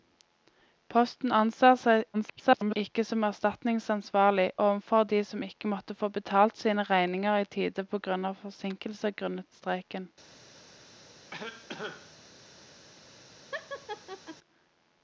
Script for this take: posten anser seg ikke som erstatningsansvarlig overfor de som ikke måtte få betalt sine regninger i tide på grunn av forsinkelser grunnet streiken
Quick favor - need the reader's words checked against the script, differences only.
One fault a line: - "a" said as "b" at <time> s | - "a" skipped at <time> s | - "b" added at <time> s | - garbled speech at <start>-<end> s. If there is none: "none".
- garbled speech at 2.1-2.8 s